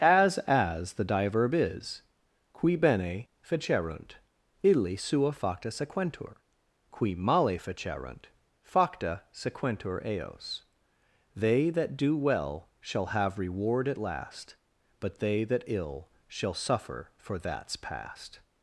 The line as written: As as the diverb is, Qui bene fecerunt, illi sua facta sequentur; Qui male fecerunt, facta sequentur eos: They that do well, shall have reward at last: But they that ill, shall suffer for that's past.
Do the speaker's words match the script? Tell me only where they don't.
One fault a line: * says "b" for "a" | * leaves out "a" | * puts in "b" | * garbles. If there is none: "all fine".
all fine